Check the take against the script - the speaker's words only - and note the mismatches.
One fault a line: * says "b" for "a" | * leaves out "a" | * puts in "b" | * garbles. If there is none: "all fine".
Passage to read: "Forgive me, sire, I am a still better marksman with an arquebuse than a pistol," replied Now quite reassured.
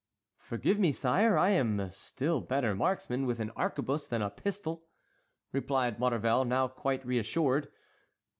* puts in "Maurevel"